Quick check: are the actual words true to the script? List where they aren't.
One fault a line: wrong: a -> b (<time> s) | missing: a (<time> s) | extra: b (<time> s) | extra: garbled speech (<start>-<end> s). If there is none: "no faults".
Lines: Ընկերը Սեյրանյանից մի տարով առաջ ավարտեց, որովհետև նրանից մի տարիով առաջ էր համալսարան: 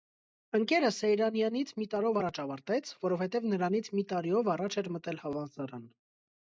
extra: մտել (5.0 s)